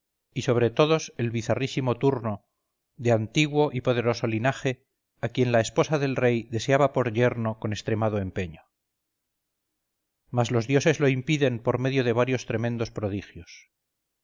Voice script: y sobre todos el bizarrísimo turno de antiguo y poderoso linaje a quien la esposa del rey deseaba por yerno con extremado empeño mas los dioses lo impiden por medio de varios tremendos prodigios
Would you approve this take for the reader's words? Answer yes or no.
yes